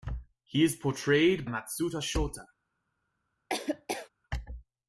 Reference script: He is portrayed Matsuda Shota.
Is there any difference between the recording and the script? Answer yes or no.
no